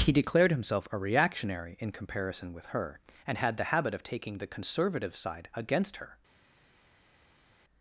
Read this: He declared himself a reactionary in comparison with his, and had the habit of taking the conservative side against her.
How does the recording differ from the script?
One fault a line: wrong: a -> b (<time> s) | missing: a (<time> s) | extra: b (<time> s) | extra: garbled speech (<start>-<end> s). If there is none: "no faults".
wrong: his -> her (2.7 s)